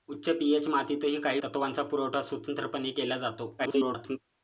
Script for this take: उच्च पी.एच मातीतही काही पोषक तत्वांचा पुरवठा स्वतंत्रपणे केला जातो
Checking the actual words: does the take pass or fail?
fail